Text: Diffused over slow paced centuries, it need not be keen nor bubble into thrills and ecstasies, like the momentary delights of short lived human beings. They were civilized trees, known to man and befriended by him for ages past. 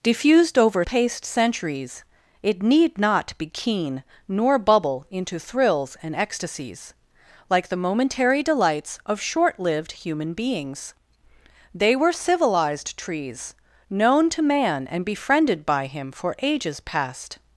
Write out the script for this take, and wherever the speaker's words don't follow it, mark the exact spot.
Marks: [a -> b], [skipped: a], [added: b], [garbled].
Diffused over [skipped: slow] paced centuries, it need not be keen nor bubble into thrills and ecstasies, like the momentary delights of short lived human beings. They were civilized trees, known to man and befriended by him for ages past.